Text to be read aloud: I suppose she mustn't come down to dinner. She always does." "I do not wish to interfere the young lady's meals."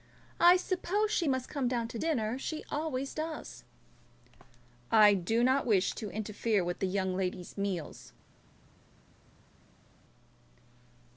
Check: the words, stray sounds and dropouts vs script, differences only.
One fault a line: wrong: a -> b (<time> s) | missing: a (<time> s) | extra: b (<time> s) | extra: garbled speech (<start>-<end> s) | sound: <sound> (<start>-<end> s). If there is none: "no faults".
wrong: mustn't -> must (1.3 s)
extra: with (6.6 s)